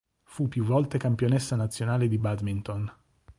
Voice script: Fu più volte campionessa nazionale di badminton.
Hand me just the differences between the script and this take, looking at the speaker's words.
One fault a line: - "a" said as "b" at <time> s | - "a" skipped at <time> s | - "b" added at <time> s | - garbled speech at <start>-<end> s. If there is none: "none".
none